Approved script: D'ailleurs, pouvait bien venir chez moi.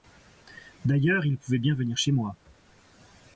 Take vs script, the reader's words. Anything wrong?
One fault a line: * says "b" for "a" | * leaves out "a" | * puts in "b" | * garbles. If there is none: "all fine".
* puts in "il"